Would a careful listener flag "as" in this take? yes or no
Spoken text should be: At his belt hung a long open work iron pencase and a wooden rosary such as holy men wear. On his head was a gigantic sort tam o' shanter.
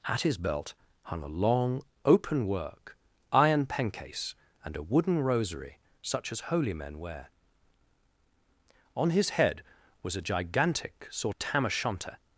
no